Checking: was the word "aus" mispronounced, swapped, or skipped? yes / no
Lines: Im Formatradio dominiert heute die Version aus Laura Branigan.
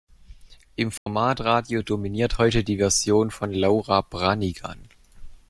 yes